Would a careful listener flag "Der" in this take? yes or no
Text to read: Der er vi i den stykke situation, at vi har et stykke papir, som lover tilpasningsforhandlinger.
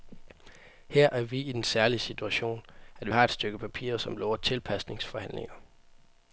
yes